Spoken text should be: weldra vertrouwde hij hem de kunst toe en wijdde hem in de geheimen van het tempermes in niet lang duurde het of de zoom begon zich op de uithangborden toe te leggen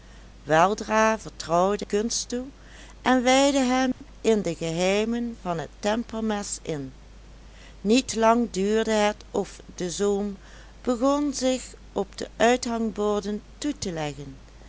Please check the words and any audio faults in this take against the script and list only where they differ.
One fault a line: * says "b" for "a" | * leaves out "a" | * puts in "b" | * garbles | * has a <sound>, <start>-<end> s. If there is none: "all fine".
* leaves out "hij hem de"
* has a dropout, 3.9-4.0 s